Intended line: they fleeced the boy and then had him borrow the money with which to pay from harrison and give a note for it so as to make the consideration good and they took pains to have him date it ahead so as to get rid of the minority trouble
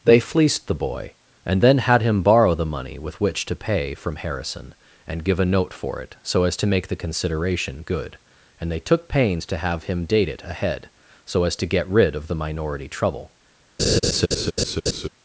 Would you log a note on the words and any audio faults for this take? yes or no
yes